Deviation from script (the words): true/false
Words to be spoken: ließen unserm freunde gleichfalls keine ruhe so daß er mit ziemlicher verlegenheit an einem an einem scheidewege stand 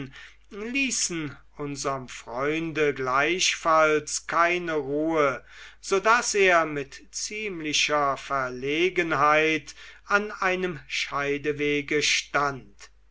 true